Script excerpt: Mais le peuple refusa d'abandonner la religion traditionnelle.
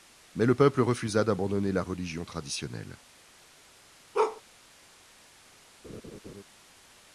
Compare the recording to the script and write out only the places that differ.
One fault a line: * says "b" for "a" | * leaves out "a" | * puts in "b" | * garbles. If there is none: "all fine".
all fine